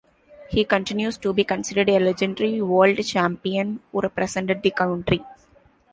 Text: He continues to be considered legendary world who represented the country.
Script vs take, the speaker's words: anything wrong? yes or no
yes